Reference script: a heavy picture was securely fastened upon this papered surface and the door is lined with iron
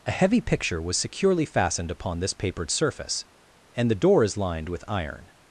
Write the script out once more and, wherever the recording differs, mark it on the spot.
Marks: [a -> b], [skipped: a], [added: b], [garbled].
a heavy picture was securely fastened upon this papered surface and the door is lined with iron